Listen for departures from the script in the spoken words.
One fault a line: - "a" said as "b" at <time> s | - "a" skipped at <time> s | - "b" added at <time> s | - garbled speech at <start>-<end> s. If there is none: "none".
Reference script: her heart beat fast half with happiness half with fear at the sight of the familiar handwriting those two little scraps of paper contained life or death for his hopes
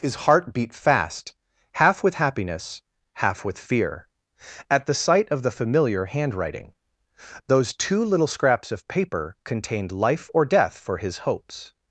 - "her" said as "his" at 0.0 s